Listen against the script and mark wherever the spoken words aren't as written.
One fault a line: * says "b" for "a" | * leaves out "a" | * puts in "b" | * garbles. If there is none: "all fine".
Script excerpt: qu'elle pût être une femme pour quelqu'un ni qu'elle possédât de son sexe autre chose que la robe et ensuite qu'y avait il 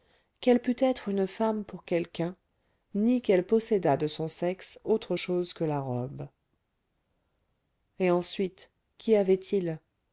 all fine